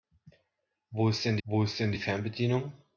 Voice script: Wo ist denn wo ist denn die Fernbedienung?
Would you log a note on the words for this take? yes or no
no